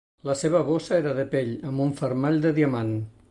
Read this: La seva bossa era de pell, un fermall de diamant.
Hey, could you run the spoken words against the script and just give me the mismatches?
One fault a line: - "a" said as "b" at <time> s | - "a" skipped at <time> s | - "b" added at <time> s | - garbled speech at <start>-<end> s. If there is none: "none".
- "amb" added at 1.7 s